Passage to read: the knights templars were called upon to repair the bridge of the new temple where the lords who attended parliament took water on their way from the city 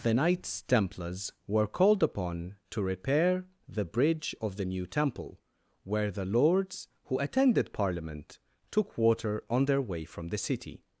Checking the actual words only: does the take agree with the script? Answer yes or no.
yes